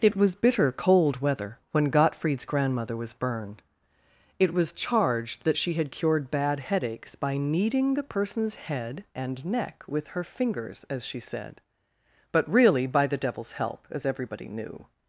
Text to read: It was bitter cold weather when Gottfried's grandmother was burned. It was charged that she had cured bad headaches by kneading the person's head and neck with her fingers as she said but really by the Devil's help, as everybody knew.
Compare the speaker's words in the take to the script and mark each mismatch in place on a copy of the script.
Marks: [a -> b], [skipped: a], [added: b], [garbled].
It was bitter cold weather when Gottfried's grandmother was burned. It was charged that she had cured bad headaches by kneading the person's head and neck with her fingers as she said but really by the Devil's help, as everybody knew.